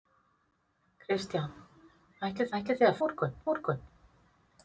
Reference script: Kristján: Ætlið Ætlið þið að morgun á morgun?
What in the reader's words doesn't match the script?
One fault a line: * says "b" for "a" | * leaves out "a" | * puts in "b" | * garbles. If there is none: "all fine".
all fine